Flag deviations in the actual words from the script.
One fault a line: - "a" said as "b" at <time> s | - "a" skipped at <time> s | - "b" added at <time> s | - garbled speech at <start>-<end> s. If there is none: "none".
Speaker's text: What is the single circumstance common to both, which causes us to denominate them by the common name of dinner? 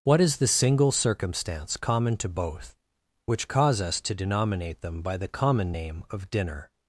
- "causes" said as "cause" at 3.5 s